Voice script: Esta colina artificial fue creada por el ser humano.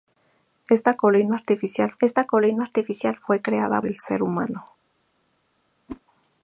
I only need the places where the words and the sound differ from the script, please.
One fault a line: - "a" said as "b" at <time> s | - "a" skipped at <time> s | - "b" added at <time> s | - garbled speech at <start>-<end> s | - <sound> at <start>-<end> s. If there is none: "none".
- "esta colina artificial" added at 2.0 s
- "por" skipped at 3.8 s
- whoosh at 5.9-6.0 s